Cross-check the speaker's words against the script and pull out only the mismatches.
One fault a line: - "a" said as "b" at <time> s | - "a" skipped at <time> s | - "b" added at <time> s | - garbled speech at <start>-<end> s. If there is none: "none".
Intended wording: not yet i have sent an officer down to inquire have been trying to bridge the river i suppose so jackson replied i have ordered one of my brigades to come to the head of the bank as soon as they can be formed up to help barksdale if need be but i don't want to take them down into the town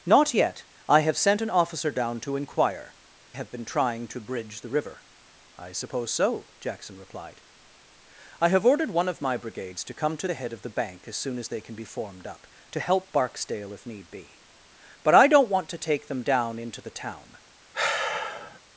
none